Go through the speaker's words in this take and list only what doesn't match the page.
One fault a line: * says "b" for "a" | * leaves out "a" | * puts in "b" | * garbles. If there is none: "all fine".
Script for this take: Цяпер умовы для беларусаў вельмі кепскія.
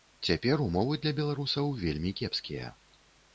all fine